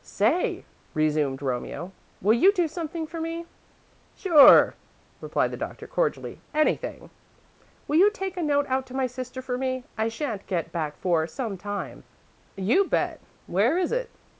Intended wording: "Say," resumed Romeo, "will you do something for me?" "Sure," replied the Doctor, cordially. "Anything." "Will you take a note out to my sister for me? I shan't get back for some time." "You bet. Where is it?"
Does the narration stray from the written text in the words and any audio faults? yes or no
no